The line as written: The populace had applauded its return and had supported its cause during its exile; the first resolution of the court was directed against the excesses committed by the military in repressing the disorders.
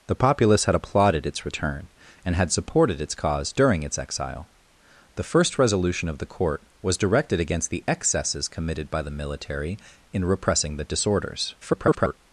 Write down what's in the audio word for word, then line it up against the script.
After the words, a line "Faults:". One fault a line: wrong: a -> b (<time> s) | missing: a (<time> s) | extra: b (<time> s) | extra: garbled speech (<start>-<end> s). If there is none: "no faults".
The populace had applauded its return and had supported its cause during its exile; the first resolution of the court was directed against the excesses committed by the military in repressing the disorders. [garbled]
Faults:
extra: garbled speech (11.6-12.2 s)